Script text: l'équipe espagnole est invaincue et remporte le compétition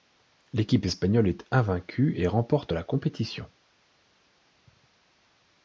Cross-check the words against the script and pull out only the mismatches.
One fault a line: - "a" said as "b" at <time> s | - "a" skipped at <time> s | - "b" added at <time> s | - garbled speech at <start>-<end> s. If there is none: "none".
- "le" said as "la" at 2.7 s